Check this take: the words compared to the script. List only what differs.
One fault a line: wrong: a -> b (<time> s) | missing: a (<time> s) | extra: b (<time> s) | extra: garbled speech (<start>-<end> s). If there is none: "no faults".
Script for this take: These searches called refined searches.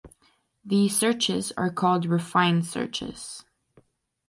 extra: are (1.6 s)